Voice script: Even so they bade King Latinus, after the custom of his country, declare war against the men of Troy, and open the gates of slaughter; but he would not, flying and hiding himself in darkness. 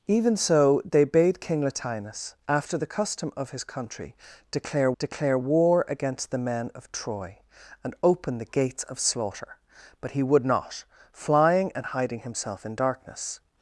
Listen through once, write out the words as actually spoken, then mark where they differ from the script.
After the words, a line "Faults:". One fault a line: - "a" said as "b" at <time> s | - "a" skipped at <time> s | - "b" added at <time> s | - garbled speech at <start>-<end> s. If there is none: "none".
Even so they bade King Latinus, after the custom of his country, declare declare war against the men of Troy, and open the gates of slaughter; but he would not, flying and hiding himself in darkness.
Faults:
- "declare" added at 5.0 s